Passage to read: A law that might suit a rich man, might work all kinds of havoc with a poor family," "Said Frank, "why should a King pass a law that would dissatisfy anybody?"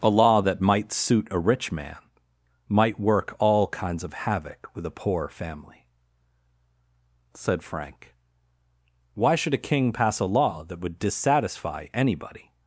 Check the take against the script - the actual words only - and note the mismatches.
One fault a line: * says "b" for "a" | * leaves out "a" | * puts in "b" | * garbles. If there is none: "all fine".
all fine